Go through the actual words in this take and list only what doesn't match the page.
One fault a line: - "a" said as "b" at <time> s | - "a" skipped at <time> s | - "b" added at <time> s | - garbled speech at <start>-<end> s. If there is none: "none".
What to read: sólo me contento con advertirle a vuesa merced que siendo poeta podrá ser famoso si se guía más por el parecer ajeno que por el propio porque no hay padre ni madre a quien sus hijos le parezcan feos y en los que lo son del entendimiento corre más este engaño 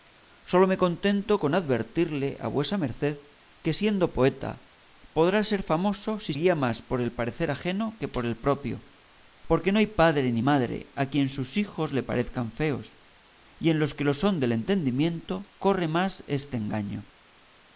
- "se" skipped at 6.3 s